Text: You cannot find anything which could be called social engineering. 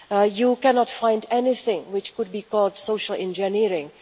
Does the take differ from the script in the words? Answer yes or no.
no